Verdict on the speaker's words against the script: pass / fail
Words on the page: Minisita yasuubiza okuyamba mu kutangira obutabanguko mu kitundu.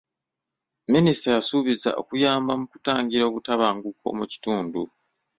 pass